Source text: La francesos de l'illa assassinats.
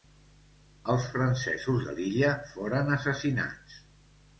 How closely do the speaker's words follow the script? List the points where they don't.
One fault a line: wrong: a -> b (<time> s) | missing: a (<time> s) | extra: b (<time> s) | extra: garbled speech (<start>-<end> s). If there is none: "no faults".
wrong: La -> Els (0.9 s)
extra: foren (2.5 s)